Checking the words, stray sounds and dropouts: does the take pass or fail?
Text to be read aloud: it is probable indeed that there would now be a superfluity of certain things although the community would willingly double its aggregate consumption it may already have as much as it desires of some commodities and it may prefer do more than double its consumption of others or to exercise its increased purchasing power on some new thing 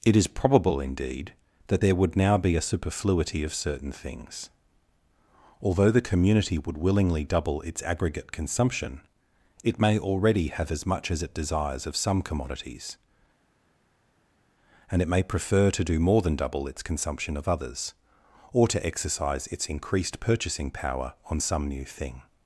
fail